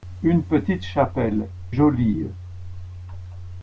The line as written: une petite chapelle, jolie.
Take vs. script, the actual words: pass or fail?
pass